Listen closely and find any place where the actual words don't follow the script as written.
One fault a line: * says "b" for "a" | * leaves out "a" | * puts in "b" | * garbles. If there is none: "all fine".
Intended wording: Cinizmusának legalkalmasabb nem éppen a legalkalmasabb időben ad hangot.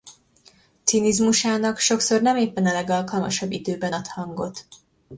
* says "sokszor" for "legalkalmasabb"